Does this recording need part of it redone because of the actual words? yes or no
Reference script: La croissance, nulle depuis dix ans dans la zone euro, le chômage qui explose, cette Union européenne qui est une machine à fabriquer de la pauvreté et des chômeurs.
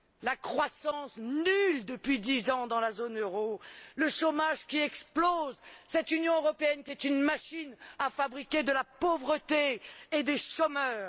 no